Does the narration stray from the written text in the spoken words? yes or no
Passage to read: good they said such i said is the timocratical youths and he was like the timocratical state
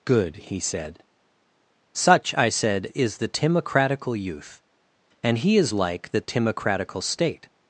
yes